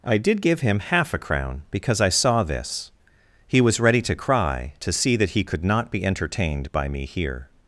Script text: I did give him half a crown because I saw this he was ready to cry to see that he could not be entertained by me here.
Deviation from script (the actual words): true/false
false